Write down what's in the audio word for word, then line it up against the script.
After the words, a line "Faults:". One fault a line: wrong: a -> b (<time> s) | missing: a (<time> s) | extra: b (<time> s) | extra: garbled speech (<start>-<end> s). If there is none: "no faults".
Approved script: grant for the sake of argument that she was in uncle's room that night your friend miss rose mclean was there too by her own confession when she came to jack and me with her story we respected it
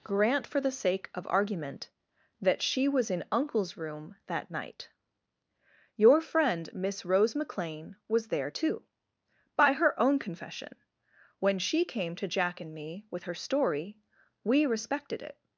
grant for the sake of argument that she was in uncle's room that night your friend miss rose mclean was there too by her own confession when she came to jack and me with her story we respected it
Faults:
no faults